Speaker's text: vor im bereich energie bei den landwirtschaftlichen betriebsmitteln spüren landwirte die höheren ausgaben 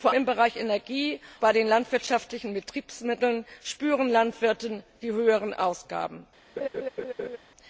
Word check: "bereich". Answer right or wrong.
right